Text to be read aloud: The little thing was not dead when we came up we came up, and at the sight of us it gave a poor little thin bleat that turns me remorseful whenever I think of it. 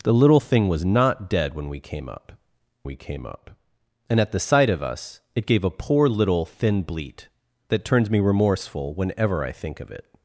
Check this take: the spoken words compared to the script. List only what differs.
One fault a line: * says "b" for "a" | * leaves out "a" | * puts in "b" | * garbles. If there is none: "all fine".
all fine